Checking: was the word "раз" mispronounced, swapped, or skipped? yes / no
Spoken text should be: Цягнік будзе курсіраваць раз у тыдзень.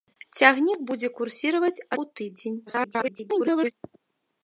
yes